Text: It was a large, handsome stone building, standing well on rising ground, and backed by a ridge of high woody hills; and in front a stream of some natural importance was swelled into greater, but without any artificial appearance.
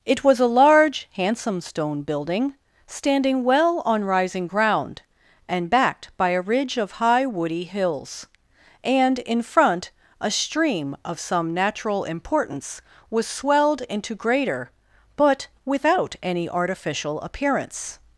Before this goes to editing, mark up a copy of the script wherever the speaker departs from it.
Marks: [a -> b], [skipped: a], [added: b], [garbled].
It was a large, handsome stone building, standing well on rising ground, and backed by a ridge of high woody hills; and in front a stream of some natural importance was swelled into greater, but without any artificial appearance.